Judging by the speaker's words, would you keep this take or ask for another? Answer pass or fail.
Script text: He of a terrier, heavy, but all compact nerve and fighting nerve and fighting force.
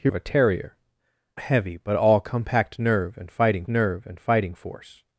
pass